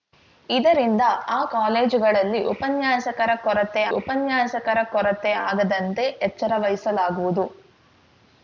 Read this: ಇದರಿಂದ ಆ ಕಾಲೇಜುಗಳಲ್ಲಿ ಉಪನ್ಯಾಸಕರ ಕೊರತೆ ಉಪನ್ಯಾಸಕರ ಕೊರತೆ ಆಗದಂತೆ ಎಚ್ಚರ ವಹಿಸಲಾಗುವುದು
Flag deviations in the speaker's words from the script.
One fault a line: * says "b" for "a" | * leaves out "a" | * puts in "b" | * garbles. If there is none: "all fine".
all fine